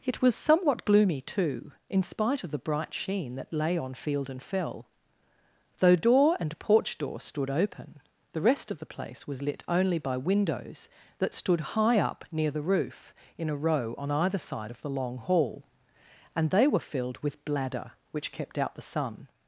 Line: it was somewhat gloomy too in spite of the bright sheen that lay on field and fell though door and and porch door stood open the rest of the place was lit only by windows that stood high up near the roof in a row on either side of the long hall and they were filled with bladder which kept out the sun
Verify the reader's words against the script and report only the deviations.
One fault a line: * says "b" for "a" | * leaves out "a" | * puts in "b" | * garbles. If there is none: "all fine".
* leaves out "and"